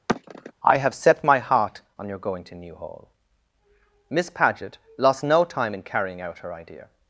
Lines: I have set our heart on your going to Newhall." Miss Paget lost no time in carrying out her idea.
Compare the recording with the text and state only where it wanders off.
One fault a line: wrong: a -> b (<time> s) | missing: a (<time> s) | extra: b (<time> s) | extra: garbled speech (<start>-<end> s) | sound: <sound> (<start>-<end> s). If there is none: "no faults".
sound: sigh (0.1-0.5 s)
wrong: our -> my (1.2 s)